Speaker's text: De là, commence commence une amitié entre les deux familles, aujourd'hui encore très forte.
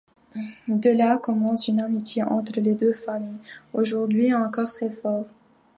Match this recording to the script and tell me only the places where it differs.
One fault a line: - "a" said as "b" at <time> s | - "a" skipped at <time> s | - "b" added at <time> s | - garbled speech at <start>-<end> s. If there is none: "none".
- "commence" skipped at 1.7 s